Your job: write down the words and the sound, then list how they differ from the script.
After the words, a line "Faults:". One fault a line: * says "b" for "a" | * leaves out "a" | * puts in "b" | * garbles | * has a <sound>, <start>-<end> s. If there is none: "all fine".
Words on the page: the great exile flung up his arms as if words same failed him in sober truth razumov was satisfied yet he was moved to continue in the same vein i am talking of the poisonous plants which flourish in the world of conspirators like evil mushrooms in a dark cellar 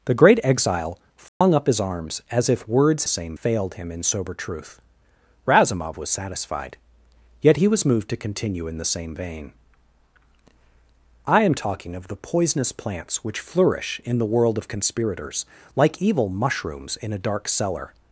the great exile flung up his arms as if words same failed him in sober truth razumov was satisfied yet he was moved to continue in the same vein i am talking of the poisonous plants which flourish in the world of conspirators like evil mushrooms in a dark cellar
Faults:
* has a dropout, 1.3-1.4 s